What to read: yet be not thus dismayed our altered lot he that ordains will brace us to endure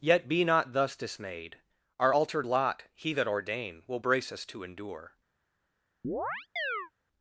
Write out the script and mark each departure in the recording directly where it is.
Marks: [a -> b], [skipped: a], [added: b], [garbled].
yet be not thus dismayed our altered lot he that [ordains -> ordain] will brace us to endure